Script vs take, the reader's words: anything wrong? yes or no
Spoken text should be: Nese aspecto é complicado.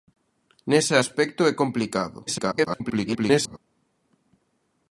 yes